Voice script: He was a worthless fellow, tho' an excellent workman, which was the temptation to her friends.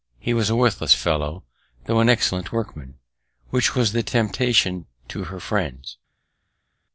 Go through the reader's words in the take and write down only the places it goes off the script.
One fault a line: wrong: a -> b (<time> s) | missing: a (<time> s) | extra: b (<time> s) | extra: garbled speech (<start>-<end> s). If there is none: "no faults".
no faults